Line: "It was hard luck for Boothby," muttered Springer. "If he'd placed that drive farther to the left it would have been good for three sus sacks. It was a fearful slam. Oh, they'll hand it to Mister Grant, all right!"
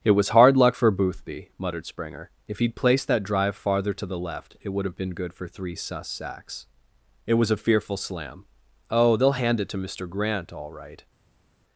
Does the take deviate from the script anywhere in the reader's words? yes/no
no